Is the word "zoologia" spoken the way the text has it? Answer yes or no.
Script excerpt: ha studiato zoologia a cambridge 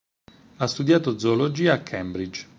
yes